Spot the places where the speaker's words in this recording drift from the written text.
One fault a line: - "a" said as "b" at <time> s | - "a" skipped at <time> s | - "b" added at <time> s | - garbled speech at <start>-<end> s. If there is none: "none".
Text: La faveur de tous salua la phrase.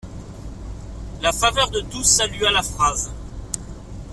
none